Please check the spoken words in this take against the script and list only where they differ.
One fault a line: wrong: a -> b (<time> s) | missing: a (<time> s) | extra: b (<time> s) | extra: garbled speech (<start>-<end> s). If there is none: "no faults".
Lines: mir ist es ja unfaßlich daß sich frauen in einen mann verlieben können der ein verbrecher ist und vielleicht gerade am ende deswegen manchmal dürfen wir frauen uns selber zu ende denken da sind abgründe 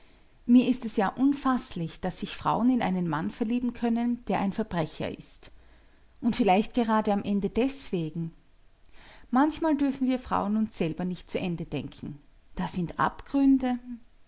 extra: nicht (11.0 s)